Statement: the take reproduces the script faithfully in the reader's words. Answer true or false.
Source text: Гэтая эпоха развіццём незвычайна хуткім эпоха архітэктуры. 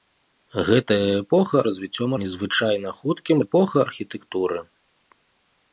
true